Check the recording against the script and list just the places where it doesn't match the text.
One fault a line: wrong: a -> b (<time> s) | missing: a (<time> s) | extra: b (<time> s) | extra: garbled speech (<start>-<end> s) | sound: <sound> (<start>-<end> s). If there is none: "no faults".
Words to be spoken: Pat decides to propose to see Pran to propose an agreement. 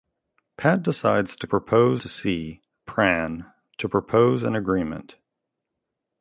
no faults